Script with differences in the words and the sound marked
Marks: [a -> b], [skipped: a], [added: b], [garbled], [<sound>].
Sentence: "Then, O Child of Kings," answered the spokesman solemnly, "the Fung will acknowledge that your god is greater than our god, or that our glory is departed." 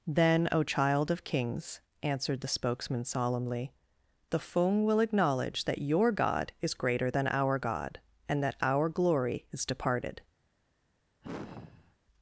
"Then, O Child of Kings," answered the spokesman solemnly, "the Fung will acknowledge that your god is greater than our god, [or -> and] that our glory is departed." [sigh]